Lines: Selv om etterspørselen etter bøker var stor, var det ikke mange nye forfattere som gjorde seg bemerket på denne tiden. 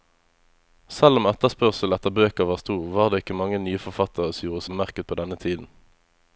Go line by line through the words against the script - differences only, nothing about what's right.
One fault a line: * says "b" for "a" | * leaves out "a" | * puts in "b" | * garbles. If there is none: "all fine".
* leaves out "seg"